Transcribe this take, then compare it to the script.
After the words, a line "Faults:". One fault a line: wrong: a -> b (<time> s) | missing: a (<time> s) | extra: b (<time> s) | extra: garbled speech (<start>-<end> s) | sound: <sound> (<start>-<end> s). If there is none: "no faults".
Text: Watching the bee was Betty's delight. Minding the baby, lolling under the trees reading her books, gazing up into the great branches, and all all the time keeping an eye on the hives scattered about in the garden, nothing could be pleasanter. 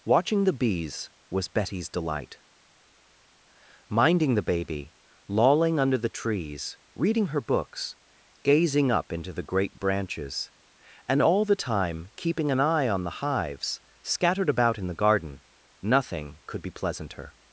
Watching the bees was Betty's delight. Minding the baby, lolling under the trees reading her books, gazing up into the great branches, and all the time keeping an eye on the hives scattered about in the garden, nothing could be pleasanter.
Faults:
wrong: bee -> bees (0.5 s)
missing: all (11.4 s)